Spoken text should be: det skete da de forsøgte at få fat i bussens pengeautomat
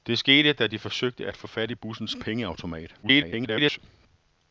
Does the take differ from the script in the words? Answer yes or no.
yes